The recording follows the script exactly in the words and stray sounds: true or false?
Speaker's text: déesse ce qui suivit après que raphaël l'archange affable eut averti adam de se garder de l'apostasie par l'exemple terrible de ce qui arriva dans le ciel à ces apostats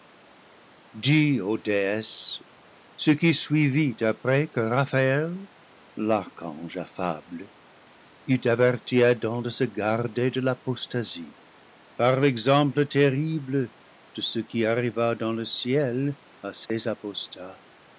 false